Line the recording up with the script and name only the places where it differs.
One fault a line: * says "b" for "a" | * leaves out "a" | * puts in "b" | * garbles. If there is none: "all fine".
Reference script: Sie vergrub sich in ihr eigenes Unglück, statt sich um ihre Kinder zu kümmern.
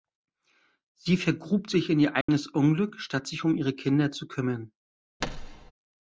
all fine